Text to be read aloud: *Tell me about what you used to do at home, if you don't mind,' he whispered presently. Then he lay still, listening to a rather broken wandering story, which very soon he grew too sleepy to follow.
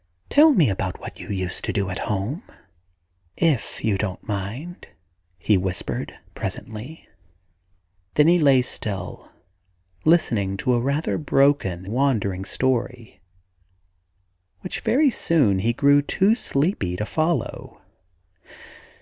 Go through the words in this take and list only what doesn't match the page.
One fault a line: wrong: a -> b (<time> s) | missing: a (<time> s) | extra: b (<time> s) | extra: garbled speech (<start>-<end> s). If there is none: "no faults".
no faults